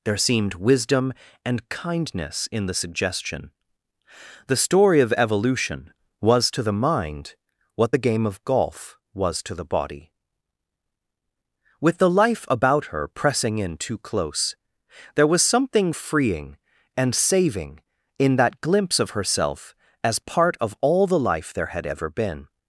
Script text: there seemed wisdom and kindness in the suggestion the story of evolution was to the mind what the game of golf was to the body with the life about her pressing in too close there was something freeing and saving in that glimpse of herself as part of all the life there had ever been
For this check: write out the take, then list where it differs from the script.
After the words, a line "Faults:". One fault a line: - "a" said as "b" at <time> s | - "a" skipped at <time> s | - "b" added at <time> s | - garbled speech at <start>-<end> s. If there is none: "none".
there seemed wisdom and kindness in the suggestion the story of evolution was to the mind what the game of golf was to the body with the life about her pressing in too close there was something freeing and saving in that glimpse of herself as part of all the life there had ever been
Faults:
none